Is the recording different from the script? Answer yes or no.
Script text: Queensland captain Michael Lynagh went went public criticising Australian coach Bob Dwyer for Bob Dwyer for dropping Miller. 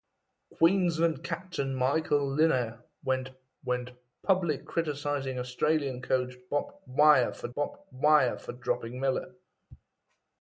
no